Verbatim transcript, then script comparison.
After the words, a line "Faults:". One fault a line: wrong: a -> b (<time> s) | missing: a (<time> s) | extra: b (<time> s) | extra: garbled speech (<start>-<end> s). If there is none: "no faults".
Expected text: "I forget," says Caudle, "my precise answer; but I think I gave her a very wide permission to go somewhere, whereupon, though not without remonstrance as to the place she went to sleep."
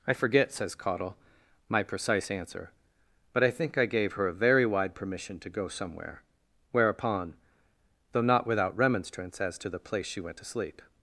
"I forget," says Caudle, "my precise answer; but I think I gave her a very wide permission to go somewhere, whereupon, though not without remonstrance as to the place she went to sleep."
Faults:
no faults